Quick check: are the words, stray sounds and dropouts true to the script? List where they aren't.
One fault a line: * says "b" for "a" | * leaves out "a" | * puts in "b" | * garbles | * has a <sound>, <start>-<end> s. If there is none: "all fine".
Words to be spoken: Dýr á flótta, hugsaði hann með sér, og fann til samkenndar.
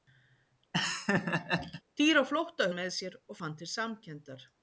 * has a laugh, 0.7-1.8 s
* leaves out "hugsaði"